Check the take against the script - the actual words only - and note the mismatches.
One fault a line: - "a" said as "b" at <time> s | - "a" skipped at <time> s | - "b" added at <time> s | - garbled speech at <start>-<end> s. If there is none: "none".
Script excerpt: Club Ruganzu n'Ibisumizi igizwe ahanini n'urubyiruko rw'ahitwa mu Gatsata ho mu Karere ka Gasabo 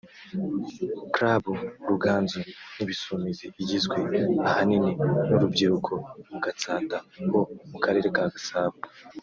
- "rw'ahitwa" skipped at 5.9 s